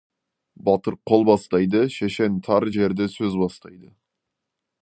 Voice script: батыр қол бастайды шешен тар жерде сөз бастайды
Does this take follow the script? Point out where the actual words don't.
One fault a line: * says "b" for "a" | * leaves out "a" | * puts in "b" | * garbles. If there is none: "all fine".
all fine